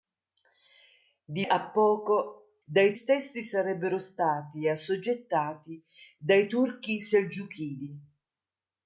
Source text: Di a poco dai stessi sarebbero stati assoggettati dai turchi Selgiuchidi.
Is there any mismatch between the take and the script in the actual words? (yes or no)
no